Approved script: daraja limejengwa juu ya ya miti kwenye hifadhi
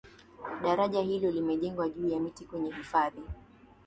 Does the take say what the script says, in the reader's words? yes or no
no